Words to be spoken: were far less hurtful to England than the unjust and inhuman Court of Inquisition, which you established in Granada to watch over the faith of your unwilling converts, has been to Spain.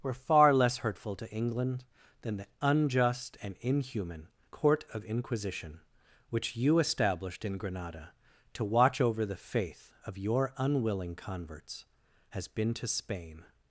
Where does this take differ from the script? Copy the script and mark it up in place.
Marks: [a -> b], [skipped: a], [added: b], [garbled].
were far less hurtful to England than the unjust and inhuman Court of Inquisition, which you established in Granada to watch over the faith of your unwilling converts, has been to Spain.